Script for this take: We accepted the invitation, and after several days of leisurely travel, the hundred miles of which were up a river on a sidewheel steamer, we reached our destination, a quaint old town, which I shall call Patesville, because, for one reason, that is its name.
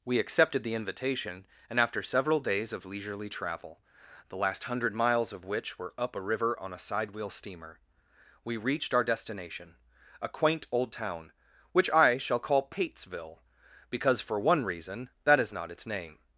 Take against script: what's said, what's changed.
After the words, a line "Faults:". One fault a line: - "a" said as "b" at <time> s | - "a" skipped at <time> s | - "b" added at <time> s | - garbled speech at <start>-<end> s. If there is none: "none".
We accepted the invitation, and after several days of leisurely travel, the last hundred miles of which were up a river on a sidewheel steamer, we reached our destination, a quaint old town, which I shall call Patesville, because, for one reason, that is not its name.
Faults:
- "last" added at 4.4 s
- "not" added at 15.5 s